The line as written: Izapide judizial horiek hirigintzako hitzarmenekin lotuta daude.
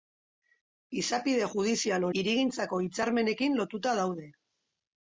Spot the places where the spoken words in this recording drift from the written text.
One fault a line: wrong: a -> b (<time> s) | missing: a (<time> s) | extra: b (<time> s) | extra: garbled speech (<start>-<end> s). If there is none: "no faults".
missing: horiek (2.1 s)